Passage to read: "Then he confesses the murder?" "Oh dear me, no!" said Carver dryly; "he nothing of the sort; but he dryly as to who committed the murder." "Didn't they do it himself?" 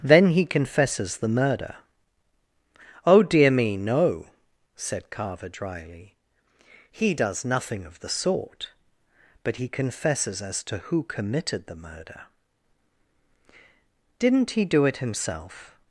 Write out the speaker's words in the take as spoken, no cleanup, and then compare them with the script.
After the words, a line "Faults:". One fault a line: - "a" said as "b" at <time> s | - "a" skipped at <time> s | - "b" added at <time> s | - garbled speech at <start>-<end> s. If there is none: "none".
"Then he confesses the murder?" "Oh dear me, no!" said Carver dryly; "he does nothing of the sort; but he confesses as to who committed the murder." "Didn't he do it himself?"
Faults:
- "does" added at 7.1 s
- "dryly" said as "confesses" at 9.7 s
- "they" said as "he" at 14.5 s